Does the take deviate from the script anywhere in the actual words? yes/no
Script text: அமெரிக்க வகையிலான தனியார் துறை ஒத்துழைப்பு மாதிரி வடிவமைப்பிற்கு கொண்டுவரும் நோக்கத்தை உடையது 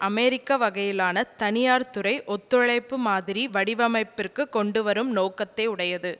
no